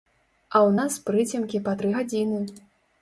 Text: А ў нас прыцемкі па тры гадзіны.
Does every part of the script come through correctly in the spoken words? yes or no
yes